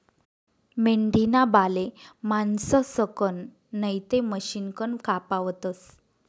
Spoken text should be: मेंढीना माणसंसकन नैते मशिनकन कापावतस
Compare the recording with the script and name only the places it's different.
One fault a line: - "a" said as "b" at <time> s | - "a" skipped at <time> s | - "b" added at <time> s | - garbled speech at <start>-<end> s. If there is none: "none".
- "बाले" added at 1.5 s